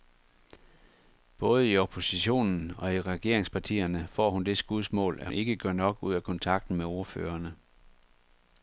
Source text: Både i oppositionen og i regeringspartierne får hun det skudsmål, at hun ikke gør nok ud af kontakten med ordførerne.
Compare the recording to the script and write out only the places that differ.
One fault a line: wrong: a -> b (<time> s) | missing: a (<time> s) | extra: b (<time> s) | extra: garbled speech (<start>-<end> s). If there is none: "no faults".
missing: hun (5.3 s)